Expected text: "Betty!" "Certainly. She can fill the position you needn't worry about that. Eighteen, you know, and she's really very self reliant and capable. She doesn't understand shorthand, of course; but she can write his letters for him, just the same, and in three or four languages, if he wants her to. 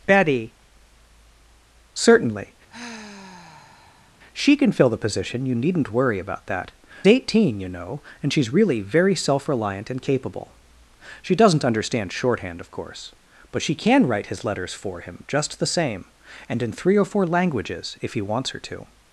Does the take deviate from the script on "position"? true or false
false